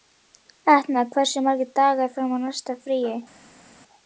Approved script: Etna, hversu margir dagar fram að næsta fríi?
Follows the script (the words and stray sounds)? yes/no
yes